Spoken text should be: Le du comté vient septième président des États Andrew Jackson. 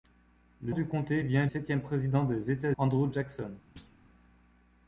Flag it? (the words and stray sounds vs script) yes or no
yes